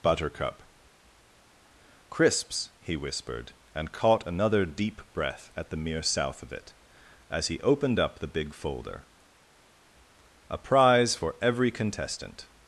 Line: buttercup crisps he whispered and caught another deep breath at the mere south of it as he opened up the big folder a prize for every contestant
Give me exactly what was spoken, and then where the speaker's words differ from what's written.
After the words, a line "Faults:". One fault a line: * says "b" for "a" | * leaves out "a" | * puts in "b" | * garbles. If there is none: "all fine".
buttercup crisps he whispered and caught another deep breath at the mere south of it as he opened up the big folder a prize for every contestant
Faults:
all fine